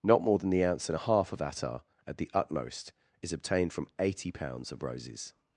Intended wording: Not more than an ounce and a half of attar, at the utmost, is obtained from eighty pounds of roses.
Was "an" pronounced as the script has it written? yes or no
no